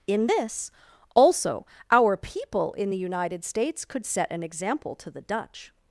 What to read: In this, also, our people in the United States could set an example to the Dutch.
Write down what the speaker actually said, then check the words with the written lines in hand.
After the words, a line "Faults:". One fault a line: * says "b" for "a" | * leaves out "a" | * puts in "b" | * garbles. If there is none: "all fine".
In this, also, our people in the United States could set an example to the Dutch.
Faults:
all fine